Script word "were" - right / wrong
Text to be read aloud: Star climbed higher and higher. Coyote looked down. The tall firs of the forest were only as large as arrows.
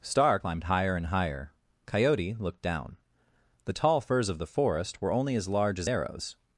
right